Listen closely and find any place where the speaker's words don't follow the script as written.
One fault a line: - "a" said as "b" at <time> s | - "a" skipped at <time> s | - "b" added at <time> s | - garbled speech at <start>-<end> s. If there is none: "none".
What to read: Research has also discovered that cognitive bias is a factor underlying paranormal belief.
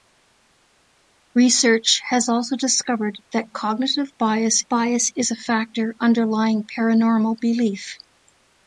- "bias" added at 4.7 s